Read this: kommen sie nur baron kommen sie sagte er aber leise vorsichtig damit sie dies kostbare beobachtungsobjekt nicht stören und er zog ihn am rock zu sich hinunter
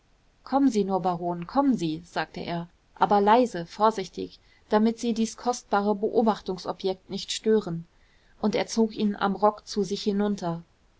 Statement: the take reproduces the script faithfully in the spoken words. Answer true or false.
true